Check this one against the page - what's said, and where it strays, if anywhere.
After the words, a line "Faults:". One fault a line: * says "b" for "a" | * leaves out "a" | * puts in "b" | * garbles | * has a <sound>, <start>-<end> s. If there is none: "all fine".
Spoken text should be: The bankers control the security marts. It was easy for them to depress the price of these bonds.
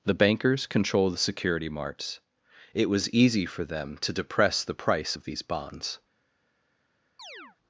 The bankers control the security marts. It was easy for them to depress the price of these bonds.
Faults:
* has a chirp, 7.2-7.6 s